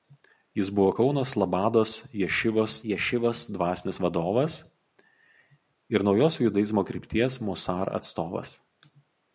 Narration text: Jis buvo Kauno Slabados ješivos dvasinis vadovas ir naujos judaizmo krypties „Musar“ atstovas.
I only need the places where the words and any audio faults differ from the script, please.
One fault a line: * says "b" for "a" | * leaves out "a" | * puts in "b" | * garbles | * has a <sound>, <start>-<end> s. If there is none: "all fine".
* puts in "ješivos"